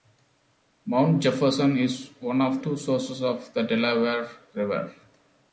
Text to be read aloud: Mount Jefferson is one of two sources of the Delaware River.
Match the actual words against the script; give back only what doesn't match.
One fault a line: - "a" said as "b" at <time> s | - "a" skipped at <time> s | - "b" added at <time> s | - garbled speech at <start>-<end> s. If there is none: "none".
none